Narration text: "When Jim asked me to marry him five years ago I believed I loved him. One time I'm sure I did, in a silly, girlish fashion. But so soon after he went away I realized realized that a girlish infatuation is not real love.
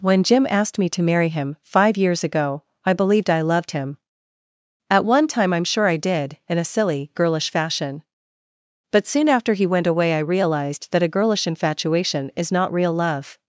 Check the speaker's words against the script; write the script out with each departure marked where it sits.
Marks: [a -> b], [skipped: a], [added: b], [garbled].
"When Jim asked me to marry him five years ago I believed I loved him. [added: At] One time I'm sure I did, in a silly, girlish fashion. But [skipped: so] soon after he went away I realized [skipped: realized] that a girlish infatuation is not real love.